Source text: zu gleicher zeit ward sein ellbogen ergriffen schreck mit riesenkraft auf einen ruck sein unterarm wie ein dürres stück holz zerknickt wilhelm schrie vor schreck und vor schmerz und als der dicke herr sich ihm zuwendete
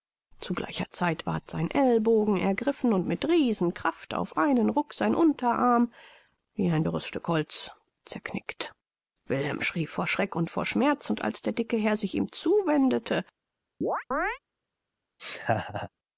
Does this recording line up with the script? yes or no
no